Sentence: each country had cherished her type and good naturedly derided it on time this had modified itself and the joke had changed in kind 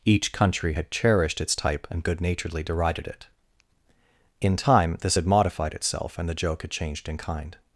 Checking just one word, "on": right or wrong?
wrong